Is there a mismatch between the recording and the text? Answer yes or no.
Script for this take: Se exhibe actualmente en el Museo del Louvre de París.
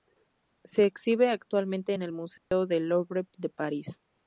no